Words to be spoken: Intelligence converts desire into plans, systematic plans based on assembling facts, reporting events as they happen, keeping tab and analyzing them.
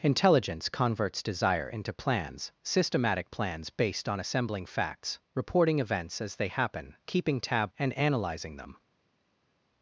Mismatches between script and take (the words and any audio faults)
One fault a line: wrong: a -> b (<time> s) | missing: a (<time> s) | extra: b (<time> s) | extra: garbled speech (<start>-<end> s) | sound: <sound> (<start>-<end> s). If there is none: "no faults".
no faults